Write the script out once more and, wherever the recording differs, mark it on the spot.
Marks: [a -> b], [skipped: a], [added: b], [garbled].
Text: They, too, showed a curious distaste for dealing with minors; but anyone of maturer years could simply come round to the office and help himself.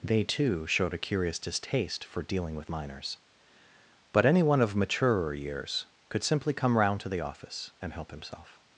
They, too, showed a curious distaste for dealing with minors; but anyone of maturer years could simply come round to the office and help himself.